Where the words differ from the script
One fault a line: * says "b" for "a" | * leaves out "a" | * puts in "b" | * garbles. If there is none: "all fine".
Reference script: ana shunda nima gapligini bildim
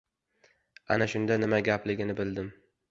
all fine